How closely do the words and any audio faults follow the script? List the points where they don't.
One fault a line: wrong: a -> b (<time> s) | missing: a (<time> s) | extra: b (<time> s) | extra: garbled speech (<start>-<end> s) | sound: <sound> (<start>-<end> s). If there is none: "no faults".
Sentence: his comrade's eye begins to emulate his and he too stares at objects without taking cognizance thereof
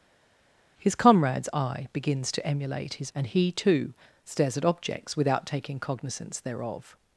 no faults